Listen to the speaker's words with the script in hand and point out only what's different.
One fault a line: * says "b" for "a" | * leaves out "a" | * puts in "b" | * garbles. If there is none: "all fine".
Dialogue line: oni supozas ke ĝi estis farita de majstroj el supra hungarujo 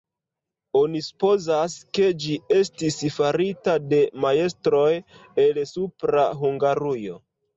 all fine